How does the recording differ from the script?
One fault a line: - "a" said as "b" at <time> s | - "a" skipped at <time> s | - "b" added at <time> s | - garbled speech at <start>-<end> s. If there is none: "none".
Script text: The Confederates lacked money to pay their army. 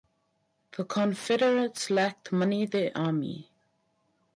- "to pay" skipped at 2.7 s